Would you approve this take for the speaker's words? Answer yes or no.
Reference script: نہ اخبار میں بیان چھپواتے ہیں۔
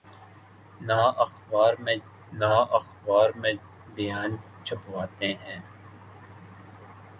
no